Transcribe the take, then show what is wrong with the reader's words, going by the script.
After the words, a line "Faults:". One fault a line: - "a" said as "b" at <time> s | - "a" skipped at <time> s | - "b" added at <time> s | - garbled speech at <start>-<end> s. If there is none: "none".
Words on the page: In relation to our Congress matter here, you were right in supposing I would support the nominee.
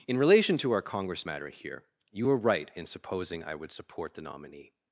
In relation to our Congress matter here, you were right in supposing I would support the nominee.
Faults:
none